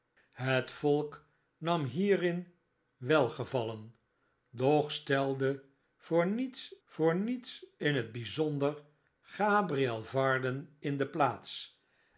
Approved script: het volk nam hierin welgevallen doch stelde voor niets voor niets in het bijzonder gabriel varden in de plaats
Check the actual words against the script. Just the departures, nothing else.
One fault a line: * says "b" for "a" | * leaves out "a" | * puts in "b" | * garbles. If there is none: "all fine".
all fine